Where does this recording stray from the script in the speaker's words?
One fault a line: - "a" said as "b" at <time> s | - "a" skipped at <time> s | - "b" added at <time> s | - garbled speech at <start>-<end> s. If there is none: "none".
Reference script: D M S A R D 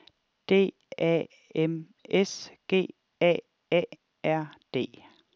- "A" added at 1.0 s
- "G A" added at 2.7 s